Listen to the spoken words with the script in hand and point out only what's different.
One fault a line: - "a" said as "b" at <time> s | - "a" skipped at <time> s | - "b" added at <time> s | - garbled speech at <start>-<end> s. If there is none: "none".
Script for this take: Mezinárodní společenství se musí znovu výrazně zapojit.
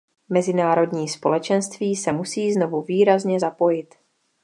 none